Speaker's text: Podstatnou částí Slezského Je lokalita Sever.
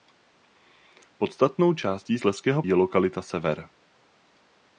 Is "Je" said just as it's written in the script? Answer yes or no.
yes